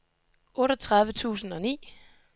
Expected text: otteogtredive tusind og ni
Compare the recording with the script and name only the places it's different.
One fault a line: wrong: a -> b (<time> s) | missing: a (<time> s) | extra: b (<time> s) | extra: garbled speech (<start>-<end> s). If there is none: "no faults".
no faults